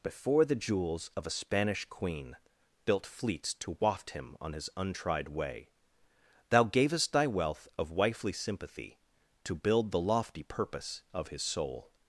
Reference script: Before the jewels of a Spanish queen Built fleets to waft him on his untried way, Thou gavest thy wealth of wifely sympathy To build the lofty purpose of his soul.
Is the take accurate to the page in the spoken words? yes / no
yes